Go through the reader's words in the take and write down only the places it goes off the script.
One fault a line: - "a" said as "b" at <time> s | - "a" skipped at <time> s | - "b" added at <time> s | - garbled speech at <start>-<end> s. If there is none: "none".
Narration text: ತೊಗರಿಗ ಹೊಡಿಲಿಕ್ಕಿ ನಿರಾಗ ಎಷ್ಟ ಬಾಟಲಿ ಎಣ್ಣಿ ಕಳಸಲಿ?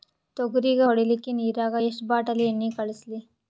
none